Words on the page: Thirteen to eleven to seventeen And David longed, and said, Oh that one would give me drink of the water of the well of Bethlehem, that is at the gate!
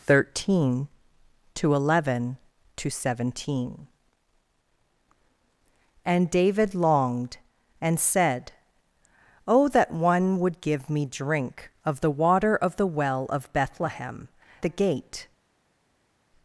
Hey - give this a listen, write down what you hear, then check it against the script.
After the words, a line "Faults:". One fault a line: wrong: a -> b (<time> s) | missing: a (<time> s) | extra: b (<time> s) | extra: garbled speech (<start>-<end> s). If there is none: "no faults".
Thirteen to eleven to seventeen And David longed, and said, Oh that one would give me drink of the water of the well of Bethlehem, the gate!
Faults:
missing: that is at (14.3 s)